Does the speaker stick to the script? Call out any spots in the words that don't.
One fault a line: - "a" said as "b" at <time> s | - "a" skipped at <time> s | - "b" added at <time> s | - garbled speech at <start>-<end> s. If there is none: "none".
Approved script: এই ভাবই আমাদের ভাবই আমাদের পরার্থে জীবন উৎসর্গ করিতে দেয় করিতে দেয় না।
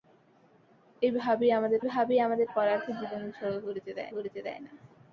none